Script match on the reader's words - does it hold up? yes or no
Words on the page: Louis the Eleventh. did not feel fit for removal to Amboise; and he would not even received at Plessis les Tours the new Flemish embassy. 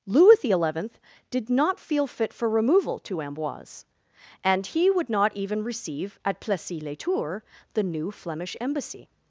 no